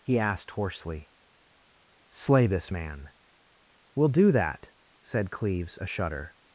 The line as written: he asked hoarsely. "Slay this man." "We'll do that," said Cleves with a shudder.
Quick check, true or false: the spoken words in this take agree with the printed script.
false